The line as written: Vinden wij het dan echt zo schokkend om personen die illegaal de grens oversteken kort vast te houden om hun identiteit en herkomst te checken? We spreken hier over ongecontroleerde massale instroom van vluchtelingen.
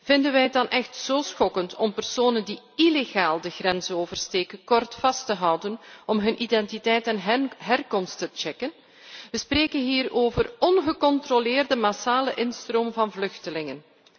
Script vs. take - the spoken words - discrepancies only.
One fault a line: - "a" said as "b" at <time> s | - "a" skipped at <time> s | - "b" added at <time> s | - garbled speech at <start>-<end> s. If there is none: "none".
none